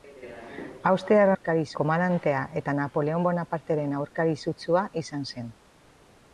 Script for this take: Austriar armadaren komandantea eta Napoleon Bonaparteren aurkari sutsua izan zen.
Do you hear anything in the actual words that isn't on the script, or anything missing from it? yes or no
yes